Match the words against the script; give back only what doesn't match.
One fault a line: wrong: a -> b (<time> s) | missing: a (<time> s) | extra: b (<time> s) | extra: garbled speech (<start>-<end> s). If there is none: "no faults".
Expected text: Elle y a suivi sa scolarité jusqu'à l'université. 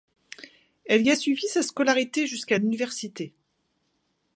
no faults